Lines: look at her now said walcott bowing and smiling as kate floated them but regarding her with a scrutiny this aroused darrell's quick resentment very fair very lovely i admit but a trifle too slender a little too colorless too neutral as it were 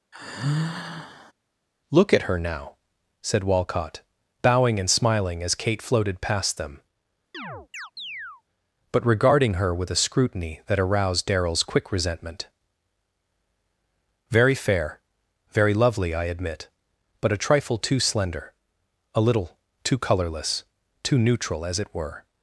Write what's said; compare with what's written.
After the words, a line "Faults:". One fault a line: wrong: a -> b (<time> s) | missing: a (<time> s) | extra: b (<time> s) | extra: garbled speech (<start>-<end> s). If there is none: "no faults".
look at her now said walcott bowing and smiling as kate floated past them but regarding her with a scrutiny that aroused darrell's quick resentment very fair very lovely i admit but a trifle too slender a little too colorless too neutral as it were
Faults:
extra: past (6.2 s)
wrong: this -> that (10.7 s)